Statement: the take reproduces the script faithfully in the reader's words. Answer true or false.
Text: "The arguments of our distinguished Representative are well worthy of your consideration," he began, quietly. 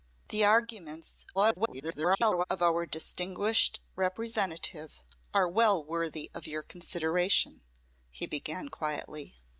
false